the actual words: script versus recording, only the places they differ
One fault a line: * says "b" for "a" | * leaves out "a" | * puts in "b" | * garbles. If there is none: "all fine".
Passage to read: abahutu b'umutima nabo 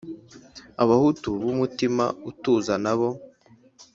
* puts in "utuza"